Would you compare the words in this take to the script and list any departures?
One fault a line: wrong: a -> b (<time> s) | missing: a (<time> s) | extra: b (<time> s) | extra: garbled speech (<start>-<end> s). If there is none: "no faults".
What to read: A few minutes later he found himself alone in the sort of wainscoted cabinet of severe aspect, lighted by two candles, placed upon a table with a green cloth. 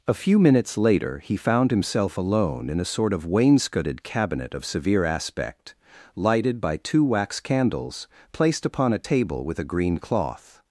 wrong: the -> a (2.8 s)
extra: wax (7.0 s)